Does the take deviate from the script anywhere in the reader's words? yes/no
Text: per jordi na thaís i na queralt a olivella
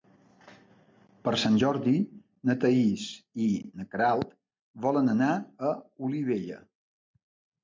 yes